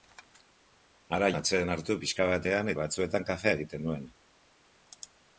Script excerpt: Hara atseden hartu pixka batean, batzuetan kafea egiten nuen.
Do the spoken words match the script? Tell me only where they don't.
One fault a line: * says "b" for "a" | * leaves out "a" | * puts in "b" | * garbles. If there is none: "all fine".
all fine